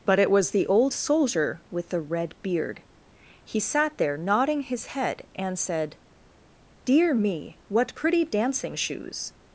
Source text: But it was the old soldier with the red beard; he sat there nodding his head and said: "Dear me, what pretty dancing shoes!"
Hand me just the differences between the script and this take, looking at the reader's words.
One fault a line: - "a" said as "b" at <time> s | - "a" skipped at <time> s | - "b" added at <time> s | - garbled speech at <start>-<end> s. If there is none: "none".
none